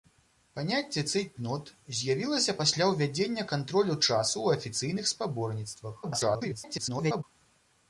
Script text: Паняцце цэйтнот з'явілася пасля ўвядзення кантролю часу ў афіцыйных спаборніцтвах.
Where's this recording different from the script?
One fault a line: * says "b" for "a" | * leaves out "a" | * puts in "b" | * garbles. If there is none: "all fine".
* garbles